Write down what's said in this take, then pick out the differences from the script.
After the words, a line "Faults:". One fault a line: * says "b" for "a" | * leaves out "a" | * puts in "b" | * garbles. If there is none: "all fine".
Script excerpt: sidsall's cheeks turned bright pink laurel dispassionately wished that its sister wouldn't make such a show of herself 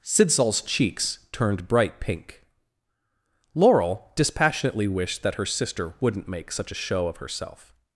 sidsall's cheeks turned bright pink laurel dispassionately wished that her sister wouldn't make such a show of herself
Faults:
* says "her" for "its"